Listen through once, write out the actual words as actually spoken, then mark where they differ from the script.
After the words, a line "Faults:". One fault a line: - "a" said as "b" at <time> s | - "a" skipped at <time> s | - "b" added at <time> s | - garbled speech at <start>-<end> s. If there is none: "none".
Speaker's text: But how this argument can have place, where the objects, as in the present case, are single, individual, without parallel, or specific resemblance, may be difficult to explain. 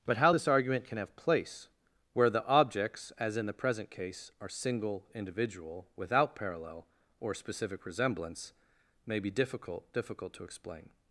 But how this argument can have place, where the objects, as in the present case, are single, individual, without parallel, or specific resemblance, may be difficult difficult to explain.
Faults:
- "difficult" added at 9.9 s